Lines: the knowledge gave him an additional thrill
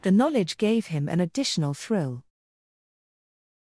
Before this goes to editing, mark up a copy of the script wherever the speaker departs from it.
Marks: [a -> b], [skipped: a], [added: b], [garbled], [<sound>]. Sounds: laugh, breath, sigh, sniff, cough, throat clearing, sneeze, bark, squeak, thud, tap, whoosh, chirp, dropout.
the knowledge gave him an additional thrill